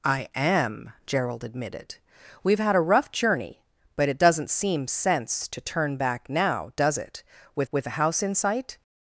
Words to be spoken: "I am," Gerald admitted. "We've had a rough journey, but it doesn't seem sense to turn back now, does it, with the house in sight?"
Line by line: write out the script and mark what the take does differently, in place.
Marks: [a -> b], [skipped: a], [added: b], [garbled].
"I am," Gerald admitted. "We've had a rough journey, but it doesn't seem sense to turn back now, does it, with [added: with] the house in sight?"